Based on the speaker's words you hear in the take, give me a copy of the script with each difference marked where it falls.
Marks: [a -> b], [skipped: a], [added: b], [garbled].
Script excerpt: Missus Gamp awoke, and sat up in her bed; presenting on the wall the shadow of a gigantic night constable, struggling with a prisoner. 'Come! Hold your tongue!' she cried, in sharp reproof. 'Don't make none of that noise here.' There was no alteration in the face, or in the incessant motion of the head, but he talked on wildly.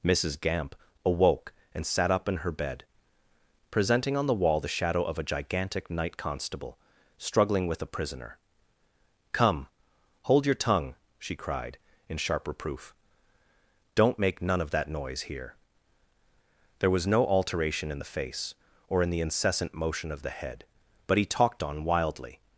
Missus Gamp awoke, and sat up in her bed; presenting on the wall the shadow of a gigantic night constable, struggling with a prisoner. 'Come! Hold your tongue!' she cried, in sharp reproof. 'Don't make none of that noise here.' There was no alteration in the face, or in the incessant motion of the head, but he talked on wildly.